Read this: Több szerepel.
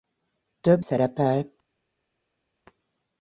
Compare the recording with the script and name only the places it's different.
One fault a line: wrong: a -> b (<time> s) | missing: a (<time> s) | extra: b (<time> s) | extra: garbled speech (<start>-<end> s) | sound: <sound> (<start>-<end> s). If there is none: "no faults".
no faults